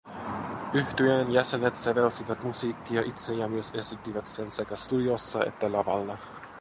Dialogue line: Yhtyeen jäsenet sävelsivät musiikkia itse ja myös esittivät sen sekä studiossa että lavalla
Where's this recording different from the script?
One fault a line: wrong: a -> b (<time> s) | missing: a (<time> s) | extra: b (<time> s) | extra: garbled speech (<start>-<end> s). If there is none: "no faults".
no faults